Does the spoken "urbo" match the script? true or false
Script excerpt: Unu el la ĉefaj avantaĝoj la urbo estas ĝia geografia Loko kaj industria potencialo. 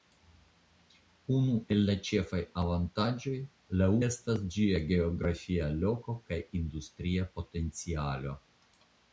false